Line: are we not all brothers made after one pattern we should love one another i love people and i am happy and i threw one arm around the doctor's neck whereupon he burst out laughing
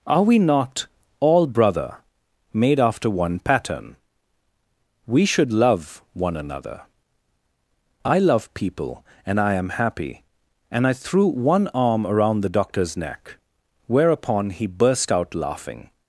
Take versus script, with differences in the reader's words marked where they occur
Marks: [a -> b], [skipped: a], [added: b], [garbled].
are we not all [brothers -> brother] made after one pattern we should love one another i love people and i am happy and i threw one arm around the doctor's neck whereupon he burst out laughing